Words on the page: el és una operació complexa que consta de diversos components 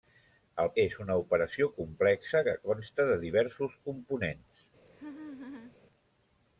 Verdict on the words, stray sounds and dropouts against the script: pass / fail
fail